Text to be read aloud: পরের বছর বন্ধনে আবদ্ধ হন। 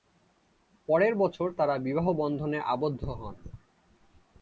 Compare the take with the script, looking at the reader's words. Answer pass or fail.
fail